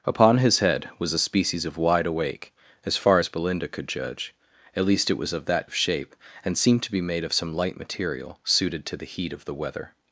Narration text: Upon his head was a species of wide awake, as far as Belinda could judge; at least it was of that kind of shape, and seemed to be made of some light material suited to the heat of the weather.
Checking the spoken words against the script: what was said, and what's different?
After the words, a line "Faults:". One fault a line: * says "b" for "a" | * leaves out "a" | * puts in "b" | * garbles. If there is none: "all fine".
Upon his head was a species of wide awake, as far as Belinda could judge; at least it was of that of shape, and seemed to be made of some light material suited to the heat of the weather.
Faults:
* leaves out "kind"